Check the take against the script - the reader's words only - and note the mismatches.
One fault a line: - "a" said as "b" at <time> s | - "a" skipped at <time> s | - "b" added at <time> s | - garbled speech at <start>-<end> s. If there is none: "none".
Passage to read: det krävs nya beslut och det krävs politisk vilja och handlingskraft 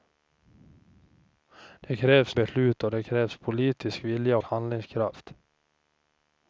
- "nya" skipped at 2.4 s
- "och" skipped at 4.4 s